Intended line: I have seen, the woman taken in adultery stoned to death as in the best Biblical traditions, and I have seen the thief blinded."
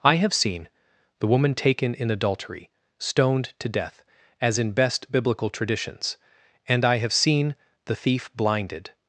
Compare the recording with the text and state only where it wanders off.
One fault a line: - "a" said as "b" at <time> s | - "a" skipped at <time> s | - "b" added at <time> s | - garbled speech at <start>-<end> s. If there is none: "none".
- "the" skipped at 4.7 s